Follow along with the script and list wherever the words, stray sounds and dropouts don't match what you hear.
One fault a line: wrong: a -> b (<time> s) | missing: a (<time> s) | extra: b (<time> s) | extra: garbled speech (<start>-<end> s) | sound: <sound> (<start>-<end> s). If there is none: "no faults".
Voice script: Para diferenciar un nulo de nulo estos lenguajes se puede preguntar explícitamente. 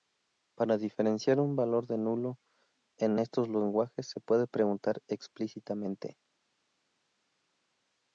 wrong: nulo -> valor (1.6 s)
extra: en (3.0 s)